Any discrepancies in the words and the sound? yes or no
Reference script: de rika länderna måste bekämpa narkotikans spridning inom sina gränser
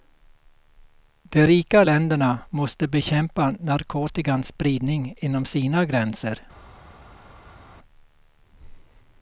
no